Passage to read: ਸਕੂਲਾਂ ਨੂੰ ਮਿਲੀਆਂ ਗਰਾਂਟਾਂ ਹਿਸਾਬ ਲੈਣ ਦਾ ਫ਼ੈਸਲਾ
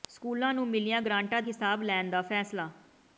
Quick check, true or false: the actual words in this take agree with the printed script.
true